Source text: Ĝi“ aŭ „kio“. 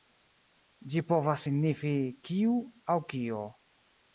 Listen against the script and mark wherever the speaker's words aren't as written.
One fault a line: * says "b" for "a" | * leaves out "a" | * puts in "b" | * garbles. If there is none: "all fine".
* puts in "povas signifi kiu"